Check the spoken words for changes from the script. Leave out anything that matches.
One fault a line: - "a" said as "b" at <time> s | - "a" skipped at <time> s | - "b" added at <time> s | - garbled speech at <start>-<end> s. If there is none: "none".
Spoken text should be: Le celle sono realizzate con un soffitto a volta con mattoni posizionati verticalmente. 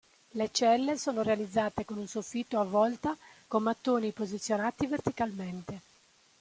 none